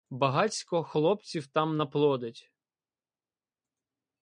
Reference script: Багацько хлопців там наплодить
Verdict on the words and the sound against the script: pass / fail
pass